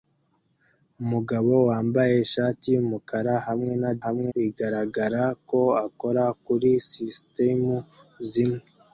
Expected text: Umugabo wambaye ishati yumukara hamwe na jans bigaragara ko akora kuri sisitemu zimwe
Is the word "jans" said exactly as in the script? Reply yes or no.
no